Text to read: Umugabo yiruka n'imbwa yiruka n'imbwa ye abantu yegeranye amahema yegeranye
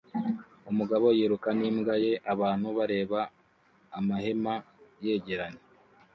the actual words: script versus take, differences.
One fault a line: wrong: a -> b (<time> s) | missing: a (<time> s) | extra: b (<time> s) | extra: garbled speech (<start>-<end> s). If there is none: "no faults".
missing: yiruka n'imbwa (1.9 s)
wrong: yegeranye -> bareba (2.8 s)